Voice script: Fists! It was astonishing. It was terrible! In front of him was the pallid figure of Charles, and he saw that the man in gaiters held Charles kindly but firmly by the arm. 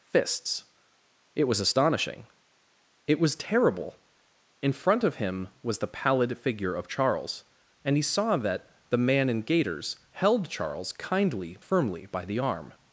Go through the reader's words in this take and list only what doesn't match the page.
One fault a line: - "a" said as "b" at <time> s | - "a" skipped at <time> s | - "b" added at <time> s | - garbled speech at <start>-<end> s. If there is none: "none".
- "but" skipped at 11.6 s